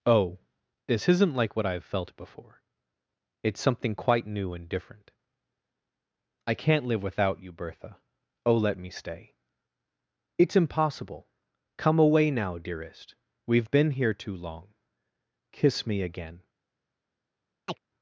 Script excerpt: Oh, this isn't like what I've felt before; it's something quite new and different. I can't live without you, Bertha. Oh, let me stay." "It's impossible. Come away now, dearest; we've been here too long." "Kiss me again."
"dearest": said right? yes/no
yes